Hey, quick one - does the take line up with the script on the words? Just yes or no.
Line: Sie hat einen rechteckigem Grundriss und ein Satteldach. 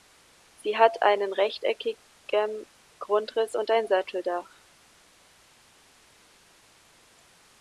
yes